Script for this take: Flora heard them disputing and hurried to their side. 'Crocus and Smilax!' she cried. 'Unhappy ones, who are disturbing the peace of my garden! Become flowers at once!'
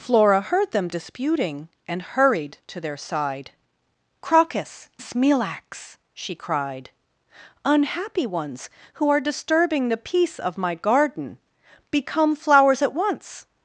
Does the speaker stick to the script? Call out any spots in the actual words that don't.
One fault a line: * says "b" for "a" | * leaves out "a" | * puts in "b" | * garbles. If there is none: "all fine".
* leaves out "and"